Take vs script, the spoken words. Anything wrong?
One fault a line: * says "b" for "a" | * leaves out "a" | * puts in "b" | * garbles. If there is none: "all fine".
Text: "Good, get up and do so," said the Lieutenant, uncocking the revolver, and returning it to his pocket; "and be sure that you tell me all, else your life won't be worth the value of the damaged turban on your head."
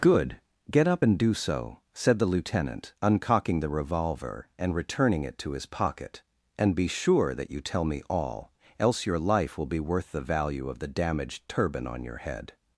* says "will" for "won't"